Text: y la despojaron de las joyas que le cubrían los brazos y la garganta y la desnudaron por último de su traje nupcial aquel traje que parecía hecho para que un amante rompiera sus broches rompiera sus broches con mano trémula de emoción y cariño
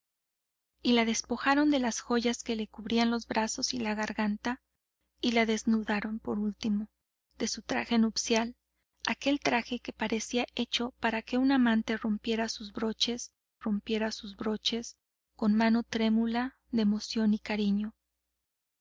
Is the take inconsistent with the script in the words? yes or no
no